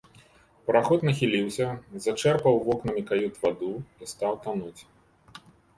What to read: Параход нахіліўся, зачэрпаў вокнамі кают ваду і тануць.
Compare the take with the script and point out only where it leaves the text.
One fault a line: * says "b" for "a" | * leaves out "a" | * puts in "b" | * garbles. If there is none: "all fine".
* puts in "стаў"